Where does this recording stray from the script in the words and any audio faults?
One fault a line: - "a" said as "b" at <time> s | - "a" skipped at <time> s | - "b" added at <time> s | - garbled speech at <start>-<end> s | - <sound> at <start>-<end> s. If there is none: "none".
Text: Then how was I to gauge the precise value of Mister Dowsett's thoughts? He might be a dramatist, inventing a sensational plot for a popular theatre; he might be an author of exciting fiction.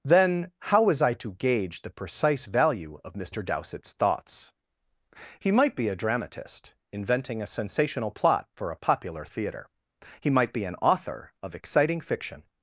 none